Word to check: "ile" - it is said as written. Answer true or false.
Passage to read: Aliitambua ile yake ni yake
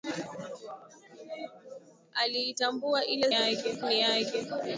true